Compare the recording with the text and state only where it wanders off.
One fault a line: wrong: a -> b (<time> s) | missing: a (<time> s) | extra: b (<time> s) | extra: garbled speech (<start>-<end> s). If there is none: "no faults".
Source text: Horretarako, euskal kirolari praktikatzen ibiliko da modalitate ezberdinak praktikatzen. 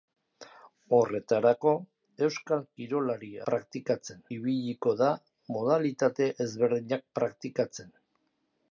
no faults